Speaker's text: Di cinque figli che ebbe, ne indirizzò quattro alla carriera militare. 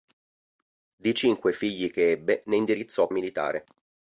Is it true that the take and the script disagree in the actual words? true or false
true